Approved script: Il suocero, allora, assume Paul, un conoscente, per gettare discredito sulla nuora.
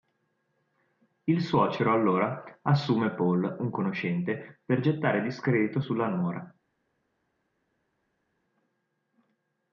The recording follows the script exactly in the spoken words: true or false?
true